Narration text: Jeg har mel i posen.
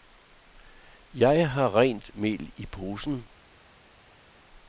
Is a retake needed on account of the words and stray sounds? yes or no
yes